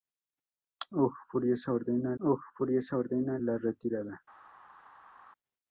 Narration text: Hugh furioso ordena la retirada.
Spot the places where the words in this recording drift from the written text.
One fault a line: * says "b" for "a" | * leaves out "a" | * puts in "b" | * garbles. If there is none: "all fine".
* puts in "hugh furioso ordena"